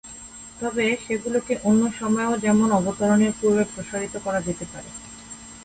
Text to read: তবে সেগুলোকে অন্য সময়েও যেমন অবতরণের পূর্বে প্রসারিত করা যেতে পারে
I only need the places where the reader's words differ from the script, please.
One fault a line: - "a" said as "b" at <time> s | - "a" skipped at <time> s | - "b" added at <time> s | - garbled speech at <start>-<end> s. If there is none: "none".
none